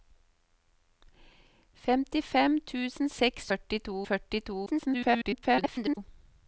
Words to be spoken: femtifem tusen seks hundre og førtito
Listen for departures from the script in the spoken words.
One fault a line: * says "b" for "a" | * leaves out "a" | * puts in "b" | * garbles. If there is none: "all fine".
* says "førtito" for "hundre"
* garbles